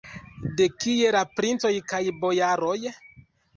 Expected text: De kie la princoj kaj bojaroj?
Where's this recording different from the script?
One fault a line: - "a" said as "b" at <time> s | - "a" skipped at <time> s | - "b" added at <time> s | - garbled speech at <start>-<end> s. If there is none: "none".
none